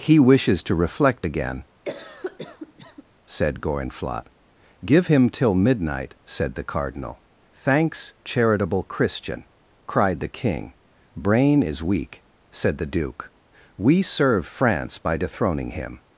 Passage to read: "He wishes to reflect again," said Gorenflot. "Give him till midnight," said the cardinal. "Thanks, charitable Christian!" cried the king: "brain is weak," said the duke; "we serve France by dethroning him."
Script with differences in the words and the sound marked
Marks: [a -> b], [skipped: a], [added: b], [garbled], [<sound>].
"He wishes to reflect again," [cough] said Gorenflot. "Give him till midnight," said the cardinal. "Thanks, charitable Christian!" cried the king: "brain is weak," said the duke; "we serve France by dethroning him."